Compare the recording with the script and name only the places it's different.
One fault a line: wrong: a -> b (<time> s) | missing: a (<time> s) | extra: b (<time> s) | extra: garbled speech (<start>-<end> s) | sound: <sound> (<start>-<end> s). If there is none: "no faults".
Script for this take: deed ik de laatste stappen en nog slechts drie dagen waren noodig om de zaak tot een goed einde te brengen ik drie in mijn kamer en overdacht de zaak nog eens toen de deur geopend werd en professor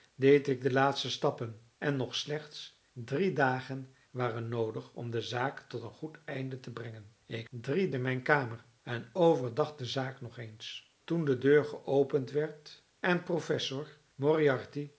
no faults